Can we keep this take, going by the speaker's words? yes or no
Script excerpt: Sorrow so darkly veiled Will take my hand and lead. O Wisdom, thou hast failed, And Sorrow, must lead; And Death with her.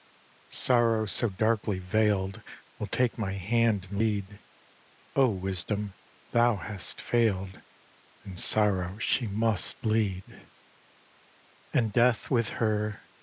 no